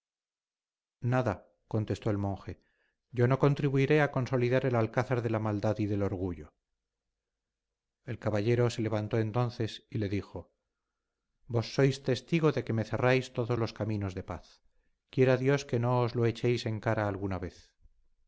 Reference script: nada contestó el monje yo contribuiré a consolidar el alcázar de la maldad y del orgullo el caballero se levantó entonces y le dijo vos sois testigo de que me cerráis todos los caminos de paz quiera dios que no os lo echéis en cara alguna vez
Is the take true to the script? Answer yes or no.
no